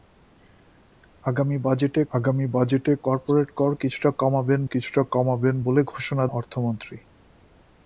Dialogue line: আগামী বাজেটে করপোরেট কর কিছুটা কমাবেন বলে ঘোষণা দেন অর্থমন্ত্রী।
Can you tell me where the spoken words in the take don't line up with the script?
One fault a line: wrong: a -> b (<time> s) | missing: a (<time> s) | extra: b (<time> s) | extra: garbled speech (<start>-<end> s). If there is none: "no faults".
extra: আগামী বাজেটে (2.1 s)
extra: কিছুটা কমাবেন (4.7 s)
missing: দেন (6.2 s)